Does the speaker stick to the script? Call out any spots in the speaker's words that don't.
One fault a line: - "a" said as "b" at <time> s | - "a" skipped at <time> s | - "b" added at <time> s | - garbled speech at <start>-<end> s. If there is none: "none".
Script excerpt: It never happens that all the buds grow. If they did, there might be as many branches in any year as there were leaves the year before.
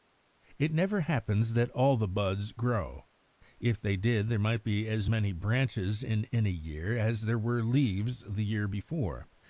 none